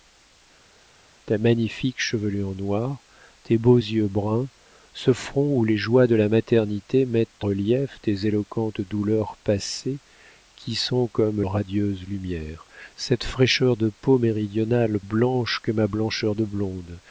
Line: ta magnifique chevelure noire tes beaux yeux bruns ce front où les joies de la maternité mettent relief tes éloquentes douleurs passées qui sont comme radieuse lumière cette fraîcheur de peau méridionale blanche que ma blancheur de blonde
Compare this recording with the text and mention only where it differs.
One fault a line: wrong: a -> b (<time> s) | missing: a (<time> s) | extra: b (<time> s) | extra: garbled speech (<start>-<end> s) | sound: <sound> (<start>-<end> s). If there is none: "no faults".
no faults